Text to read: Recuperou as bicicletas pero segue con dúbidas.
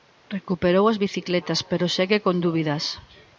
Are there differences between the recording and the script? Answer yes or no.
no